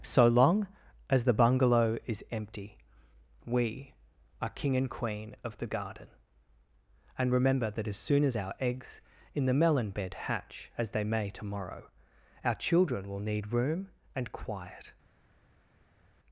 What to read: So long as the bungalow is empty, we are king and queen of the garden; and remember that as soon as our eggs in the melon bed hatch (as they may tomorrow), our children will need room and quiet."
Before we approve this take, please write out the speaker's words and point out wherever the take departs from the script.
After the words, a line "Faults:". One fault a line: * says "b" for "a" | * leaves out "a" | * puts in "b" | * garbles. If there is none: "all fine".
So long as the bungalow is empty, we are king and queen of the garden; and remember that as soon as our eggs in the melon bed hatch (as they may tomorrow), our children will need room and quiet."
Faults:
all fine